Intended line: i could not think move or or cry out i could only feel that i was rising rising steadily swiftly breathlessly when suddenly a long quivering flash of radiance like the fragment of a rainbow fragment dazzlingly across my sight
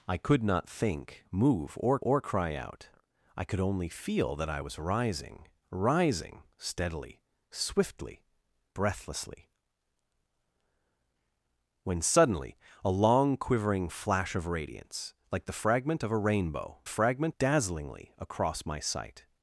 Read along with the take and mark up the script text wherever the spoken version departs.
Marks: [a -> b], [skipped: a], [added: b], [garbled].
i could not think move or or cry out i could only feel that i was rising rising steadily swiftly breathlessly when suddenly a long quivering flash of radiance like the fragment of a rainbow fragment dazzlingly across my sight